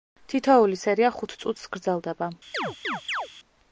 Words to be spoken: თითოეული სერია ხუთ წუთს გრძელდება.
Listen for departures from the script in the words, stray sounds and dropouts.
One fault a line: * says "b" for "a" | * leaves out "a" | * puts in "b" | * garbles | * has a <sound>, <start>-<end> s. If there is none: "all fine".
* has a chirp, 2.5-3.3 s